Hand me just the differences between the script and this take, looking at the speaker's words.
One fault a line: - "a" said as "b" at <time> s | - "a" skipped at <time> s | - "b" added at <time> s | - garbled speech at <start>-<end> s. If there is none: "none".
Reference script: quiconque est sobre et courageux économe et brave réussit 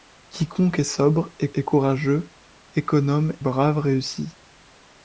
- "et" added at 1.5 s
- "et" skipped at 3.3 s